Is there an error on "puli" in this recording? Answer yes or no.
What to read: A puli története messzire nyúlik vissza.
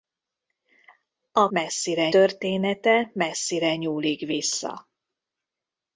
yes